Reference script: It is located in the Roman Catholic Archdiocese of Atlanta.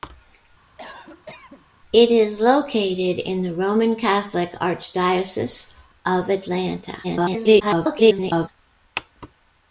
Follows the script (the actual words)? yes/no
no